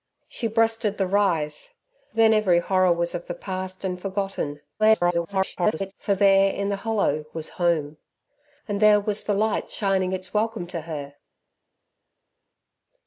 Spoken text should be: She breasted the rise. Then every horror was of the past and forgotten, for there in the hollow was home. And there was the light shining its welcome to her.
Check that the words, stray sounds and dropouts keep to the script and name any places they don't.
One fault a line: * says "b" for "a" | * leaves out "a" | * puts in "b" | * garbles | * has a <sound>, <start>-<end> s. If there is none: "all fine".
* garbles